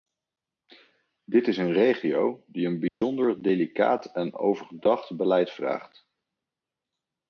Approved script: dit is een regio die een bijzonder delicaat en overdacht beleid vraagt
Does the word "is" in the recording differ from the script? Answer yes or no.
no